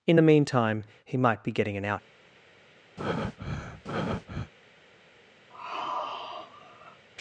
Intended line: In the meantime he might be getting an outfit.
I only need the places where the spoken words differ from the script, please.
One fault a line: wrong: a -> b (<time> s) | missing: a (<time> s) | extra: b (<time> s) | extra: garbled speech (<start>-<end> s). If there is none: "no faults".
wrong: outfit -> out (1.8 s)